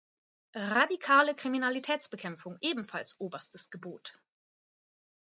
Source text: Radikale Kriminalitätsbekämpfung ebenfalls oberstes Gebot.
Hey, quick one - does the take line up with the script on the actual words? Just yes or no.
yes